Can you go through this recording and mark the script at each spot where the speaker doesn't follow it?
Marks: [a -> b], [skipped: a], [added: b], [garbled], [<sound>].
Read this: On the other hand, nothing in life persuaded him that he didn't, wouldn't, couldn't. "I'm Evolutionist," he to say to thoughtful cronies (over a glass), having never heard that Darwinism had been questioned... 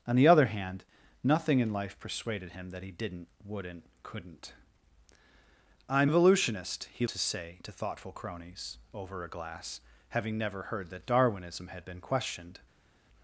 On the other hand, nothing in life persuaded him that he didn't, wouldn't, couldn't. "I'm Evolutionist," he to say to thoughtful cronies (over a glass), having never heard that Darwinism had been questioned...